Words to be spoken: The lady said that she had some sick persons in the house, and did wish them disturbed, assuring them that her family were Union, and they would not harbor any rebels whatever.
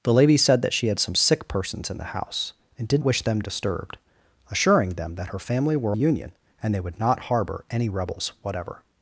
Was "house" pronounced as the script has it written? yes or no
yes